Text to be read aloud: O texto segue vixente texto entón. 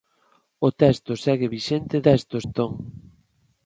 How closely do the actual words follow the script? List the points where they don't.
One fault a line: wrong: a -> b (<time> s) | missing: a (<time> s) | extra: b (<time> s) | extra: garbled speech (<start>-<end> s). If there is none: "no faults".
no faults